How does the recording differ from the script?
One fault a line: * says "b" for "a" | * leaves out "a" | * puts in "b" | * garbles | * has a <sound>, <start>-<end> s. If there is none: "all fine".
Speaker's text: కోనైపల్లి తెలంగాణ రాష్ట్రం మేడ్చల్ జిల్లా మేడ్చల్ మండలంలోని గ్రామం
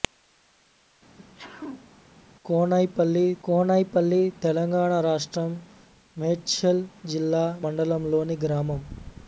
* has a sneeze, 1.2-1.9 s
* puts in "కోనైపల్లి"
* leaves out "మేడ్చల్"